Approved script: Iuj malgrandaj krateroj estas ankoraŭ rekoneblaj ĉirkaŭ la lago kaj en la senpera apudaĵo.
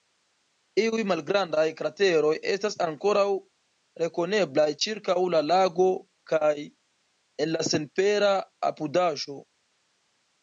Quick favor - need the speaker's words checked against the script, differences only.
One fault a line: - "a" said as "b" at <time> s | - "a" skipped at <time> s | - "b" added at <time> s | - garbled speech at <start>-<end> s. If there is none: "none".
none